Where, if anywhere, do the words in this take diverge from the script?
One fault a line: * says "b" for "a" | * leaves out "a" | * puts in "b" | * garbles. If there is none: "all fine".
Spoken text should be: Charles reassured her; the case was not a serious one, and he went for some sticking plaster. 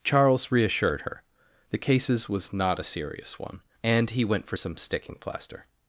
* says "cases" for "case"